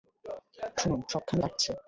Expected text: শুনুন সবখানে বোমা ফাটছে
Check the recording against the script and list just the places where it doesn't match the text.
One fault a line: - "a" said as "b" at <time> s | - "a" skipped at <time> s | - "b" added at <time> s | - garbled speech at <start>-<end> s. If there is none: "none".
- "বোমা" skipped at 1.4 s